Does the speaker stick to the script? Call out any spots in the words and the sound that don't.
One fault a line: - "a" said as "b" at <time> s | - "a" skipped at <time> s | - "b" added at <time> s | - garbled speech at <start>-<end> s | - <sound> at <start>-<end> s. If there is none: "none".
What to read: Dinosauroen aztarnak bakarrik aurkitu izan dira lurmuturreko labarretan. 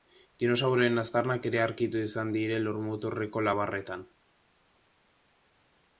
- "bakarrik" said as "ere" at 1.5 s